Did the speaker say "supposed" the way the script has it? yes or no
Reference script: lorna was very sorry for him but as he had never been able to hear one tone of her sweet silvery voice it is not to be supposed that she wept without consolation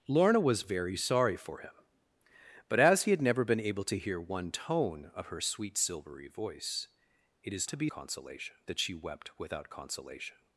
no